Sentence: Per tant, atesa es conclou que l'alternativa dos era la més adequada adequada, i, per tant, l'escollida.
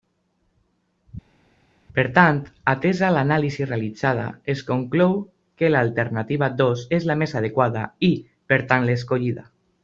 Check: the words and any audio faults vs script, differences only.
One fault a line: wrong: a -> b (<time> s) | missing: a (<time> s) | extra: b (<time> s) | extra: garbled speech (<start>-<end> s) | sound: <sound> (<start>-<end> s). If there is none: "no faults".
extra: l'anàlisi realitzada (3.2 s)
wrong: era -> és (7.0 s)
missing: adequada (7.9 s)